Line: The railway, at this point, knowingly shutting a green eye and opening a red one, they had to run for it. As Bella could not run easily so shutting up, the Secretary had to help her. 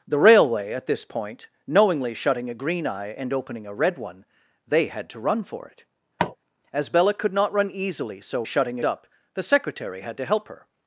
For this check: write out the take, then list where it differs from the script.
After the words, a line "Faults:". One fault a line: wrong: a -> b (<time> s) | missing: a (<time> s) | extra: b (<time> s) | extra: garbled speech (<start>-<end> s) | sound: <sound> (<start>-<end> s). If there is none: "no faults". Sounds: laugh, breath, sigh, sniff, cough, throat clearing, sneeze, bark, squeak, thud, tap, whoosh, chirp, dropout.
The railway, at this point, knowingly shutting a green eye and opening a red one, they had to run for it. As Bella could not run easily so shutting up, the Secretary had to help her.
Faults:
sound: tap (6.2-6.4 s)